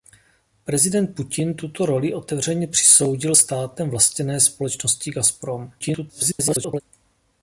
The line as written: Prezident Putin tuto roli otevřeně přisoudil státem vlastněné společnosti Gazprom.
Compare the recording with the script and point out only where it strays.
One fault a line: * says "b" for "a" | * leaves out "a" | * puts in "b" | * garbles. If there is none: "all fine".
* garbles